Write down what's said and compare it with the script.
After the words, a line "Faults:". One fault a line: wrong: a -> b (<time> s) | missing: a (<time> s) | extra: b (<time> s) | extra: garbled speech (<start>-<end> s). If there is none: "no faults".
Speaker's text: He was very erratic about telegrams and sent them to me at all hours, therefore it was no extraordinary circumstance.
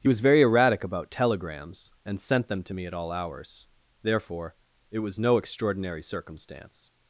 He was very erratic about telegrams and sent them to me at all hours, therefore it was no extraordinary circumstance.
Faults:
no faults